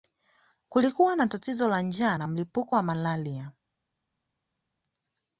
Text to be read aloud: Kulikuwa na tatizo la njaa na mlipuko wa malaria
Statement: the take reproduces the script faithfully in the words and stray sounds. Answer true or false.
true